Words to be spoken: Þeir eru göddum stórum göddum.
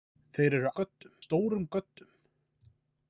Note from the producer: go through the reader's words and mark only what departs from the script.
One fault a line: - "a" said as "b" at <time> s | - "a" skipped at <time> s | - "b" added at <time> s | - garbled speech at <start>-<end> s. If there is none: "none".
none